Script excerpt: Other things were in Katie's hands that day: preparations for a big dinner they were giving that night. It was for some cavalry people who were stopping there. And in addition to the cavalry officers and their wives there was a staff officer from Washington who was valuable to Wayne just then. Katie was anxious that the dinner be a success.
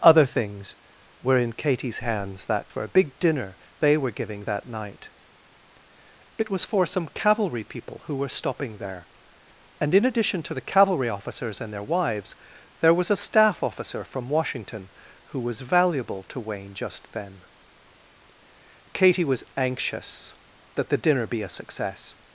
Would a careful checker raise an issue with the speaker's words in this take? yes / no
yes